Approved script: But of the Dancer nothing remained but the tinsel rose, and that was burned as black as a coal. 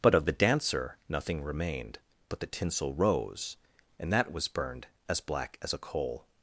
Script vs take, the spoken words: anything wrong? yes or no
no